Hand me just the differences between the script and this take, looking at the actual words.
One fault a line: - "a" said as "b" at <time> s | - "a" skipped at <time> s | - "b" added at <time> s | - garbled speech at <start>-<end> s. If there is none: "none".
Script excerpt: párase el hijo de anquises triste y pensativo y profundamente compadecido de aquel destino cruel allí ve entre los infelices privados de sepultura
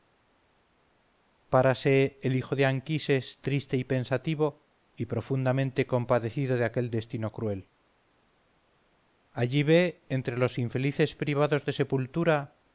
none